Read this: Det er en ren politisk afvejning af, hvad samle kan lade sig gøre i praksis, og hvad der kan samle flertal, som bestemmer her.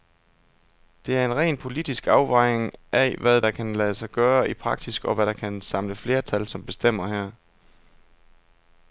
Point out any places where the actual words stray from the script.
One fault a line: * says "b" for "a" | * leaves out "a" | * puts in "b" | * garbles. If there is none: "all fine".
* says "der" for "samle"